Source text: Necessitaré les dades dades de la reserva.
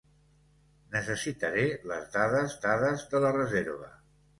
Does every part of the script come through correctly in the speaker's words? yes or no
yes